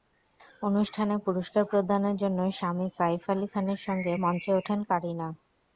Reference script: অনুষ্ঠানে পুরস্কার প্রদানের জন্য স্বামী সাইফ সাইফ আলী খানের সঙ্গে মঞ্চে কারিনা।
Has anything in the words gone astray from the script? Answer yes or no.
yes